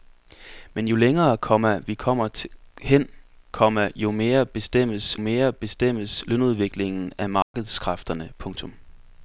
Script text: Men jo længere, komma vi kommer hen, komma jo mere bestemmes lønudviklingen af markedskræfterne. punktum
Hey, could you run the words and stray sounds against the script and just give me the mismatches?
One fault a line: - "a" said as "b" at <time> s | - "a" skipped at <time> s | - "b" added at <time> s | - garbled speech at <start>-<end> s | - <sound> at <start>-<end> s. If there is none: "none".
- "mere bestemmes" added at 5.2 s
- dropout at 7.4-7.5 s